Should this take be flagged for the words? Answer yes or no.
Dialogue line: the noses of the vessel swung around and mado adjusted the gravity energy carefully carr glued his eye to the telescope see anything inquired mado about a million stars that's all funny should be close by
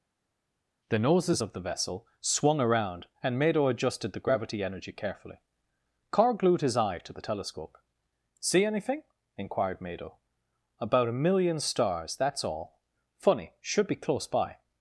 no